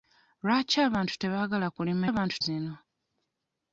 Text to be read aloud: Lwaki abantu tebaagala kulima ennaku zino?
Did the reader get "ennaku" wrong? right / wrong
wrong